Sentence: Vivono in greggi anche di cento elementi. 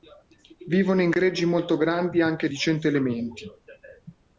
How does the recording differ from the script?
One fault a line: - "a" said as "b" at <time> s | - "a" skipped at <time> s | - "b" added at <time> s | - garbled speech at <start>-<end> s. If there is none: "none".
- "molto grandi" added at 1.4 s